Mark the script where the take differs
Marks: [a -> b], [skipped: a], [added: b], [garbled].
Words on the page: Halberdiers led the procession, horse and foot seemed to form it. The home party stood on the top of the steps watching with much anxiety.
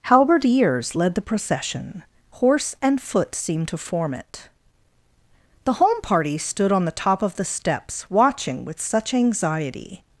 Halberdiers led the procession, horse and foot seemed to form it. The home party stood on the top of the steps watching with [much -> such] anxiety.